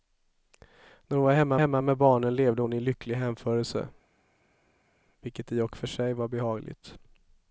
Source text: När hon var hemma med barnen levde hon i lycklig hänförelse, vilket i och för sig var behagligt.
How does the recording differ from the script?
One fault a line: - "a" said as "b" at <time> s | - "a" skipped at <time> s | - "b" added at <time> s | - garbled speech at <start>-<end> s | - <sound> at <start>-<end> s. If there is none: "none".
- "hemma" added at 1.6 s